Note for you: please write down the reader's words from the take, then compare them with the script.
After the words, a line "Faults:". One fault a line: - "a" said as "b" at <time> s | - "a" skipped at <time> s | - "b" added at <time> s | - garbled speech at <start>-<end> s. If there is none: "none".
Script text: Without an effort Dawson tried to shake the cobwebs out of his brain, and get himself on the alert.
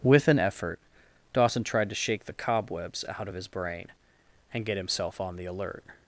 With an effort Dawson tried to shake the cobwebs out of his brain, and get himself on the alert.
Faults:
- "Without" said as "With" at 0.0 s